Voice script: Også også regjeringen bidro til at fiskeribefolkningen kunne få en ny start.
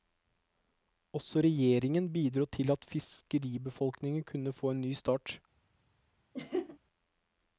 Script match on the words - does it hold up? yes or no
no